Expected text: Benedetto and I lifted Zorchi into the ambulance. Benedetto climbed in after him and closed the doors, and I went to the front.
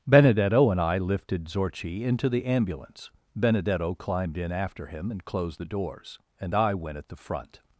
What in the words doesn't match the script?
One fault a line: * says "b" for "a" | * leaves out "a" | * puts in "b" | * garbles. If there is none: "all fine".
* says "at" for "to"